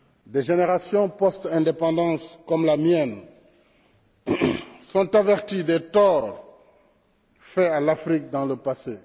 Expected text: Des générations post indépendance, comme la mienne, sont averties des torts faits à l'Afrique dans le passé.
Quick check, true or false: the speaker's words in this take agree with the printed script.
true